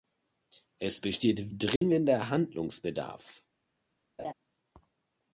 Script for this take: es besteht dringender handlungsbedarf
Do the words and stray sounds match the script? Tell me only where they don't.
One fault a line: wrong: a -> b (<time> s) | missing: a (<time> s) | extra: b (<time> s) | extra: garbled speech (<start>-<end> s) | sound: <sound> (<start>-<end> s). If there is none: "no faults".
sound: dropout (1.8-1.8 s)
sound: laugh (4.2-4.3 s)